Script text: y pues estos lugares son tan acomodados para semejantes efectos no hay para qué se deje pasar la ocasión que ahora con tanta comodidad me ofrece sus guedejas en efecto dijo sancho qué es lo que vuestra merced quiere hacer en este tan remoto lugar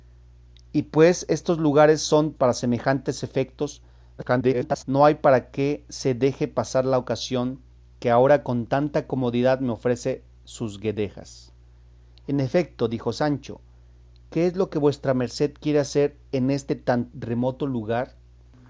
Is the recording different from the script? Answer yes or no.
yes